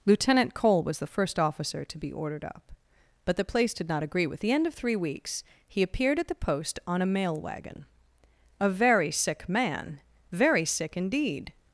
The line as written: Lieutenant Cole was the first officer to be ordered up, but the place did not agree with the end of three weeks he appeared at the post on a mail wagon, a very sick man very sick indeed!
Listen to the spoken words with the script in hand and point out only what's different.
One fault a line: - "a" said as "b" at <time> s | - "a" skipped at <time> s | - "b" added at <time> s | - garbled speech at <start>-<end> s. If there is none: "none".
none